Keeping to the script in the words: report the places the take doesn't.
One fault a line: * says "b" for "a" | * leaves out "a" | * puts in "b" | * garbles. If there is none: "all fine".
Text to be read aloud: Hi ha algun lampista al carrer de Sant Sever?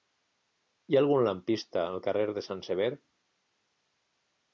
all fine